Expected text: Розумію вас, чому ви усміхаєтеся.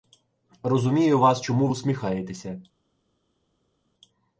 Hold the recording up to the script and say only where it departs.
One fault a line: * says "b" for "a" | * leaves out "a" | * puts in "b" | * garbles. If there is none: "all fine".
* leaves out "ви"